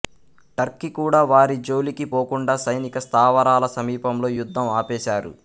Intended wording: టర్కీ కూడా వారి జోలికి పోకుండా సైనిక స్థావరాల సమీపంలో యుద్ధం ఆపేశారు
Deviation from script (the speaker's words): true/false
false